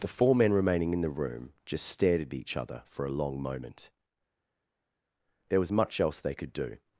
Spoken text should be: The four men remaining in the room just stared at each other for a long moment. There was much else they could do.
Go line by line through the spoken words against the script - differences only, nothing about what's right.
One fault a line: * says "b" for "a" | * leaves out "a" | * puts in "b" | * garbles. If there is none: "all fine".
all fine